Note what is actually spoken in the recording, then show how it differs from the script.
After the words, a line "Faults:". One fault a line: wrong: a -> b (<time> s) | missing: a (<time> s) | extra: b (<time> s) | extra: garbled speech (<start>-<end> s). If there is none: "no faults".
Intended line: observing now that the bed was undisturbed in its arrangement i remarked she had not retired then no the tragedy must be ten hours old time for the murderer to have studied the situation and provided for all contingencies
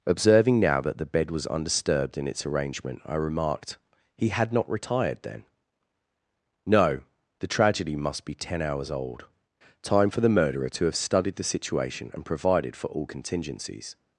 observing now that the bed was undisturbed in its arrangement i remarked he had not retired then no the tragedy must be ten hours old time for the murderer to have studied the situation and provided for all contingencies
Faults:
wrong: she -> he (4.2 s)